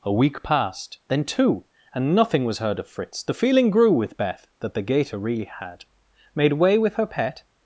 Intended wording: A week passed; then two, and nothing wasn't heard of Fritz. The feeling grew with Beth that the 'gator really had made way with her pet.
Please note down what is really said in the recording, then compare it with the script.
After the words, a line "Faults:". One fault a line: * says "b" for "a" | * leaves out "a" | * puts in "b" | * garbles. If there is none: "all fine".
A week passed; then two, and nothing was heard of Fritz. The feeling grew with Beth that the 'gator really had made way with her pet.
Faults:
* says "was" for "wasn't"